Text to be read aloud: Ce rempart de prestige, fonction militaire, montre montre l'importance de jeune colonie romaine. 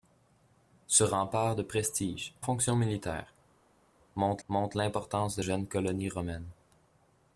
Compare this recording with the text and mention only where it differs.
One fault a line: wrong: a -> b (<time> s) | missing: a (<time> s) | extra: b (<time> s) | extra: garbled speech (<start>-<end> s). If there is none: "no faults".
no faults